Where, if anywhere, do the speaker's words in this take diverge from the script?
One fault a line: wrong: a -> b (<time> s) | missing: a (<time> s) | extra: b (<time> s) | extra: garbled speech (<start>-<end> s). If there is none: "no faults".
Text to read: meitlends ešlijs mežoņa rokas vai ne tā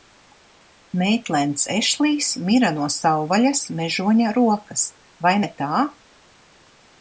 extra: mira no savvaļas (2.5 s)